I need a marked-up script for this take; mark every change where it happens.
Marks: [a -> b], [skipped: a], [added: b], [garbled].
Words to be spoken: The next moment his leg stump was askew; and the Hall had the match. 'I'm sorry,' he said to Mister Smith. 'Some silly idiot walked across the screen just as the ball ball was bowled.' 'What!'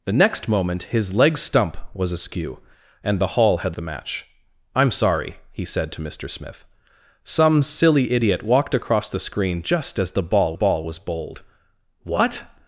The next moment his leg stump was askew; and the Hall had the match. 'I'm sorry,' he said to Mister Smith. 'Some silly idiot walked across the screen just as the ball ball was bowled.' 'What!'